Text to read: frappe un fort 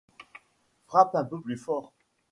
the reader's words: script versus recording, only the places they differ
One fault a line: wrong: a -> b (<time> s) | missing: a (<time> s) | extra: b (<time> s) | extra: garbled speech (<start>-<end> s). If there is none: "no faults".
extra: peu plus (1.2 s)